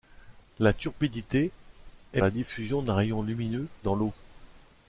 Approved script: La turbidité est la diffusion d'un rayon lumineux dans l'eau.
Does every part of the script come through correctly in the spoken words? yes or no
yes